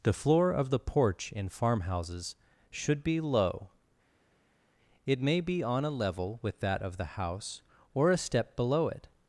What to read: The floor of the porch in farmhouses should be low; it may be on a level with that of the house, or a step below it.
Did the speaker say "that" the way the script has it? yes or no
yes